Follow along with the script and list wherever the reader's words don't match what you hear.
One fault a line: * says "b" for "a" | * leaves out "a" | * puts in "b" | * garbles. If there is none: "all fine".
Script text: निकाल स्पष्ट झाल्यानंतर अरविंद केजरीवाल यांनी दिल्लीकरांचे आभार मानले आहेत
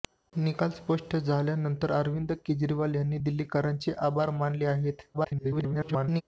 * garbles